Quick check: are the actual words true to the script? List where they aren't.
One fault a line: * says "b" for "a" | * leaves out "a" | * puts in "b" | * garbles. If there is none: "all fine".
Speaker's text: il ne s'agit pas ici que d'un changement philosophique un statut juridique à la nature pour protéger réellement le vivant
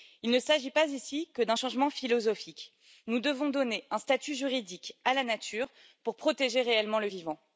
* puts in "nous devons donner"